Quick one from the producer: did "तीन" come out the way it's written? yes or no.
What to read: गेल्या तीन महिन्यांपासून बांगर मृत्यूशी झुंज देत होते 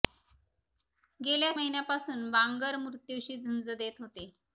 no